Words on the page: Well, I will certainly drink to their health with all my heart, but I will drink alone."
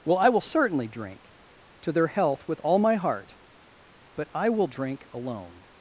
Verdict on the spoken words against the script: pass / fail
pass